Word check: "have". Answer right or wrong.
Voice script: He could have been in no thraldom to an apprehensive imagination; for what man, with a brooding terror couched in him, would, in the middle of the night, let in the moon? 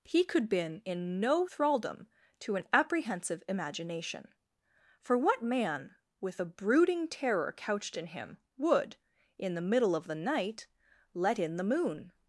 wrong